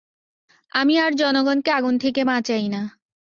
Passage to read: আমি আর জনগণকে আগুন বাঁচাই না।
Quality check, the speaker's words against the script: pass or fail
fail